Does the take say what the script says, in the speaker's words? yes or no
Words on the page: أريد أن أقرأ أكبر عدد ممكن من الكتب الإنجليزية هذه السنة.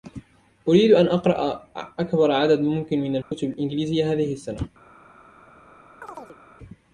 yes